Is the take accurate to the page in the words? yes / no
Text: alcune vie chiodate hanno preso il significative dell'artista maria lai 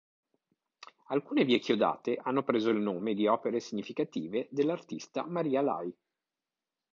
no